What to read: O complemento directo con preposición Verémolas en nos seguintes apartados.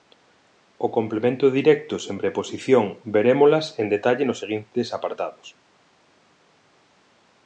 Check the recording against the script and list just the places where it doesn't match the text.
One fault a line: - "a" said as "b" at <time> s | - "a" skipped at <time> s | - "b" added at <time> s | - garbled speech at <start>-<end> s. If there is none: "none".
- "con" said as "sen" at 2.0 s
- "detalle" added at 3.9 s